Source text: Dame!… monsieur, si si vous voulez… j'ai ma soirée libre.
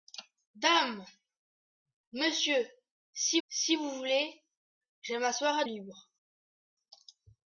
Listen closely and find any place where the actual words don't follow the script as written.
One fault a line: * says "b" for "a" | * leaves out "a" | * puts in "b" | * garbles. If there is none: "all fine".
all fine